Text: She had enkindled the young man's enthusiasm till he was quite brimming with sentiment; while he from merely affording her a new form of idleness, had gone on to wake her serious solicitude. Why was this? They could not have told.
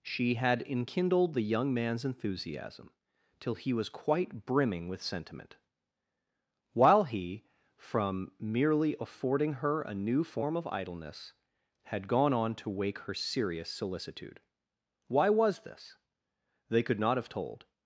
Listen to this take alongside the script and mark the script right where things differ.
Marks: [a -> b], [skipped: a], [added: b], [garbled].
She had enkindled the young man's enthusiasm till he was quite brimming with sentiment; while he from merely affording her a new form of idleness, had gone on to wake her serious solicitude. Why was this? They could not have told.